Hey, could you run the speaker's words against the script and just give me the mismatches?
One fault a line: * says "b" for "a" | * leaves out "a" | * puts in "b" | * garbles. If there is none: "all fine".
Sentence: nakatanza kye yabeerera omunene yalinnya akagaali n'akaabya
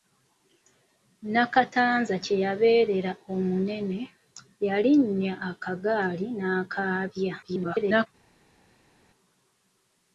* garbles